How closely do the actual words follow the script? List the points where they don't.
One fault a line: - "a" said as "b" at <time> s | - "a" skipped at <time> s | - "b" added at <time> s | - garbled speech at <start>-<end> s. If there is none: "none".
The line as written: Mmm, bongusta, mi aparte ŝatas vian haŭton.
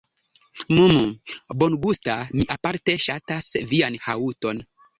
none